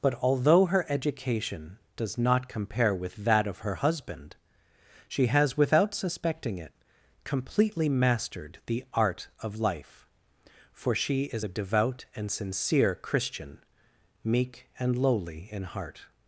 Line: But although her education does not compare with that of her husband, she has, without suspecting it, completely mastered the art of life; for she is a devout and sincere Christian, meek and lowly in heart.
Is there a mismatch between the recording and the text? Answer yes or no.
no